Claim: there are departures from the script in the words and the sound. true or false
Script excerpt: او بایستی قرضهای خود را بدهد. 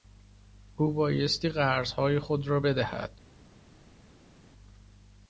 false